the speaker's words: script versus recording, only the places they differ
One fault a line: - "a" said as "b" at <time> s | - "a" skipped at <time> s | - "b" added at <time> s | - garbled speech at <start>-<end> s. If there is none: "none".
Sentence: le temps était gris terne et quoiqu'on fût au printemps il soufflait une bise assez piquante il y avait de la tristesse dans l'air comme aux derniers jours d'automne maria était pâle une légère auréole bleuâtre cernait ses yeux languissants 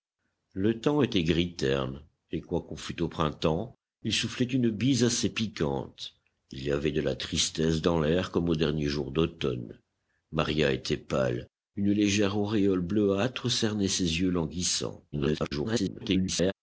- garbled speech at 15.1-16.5 s